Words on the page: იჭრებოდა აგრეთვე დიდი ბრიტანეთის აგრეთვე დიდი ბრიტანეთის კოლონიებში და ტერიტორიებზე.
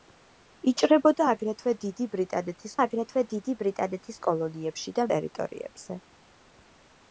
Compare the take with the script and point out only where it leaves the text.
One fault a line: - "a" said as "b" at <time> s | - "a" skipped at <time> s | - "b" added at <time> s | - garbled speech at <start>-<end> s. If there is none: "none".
none